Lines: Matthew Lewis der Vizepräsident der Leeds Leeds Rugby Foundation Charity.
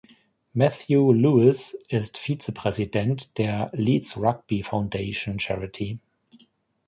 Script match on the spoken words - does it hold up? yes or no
no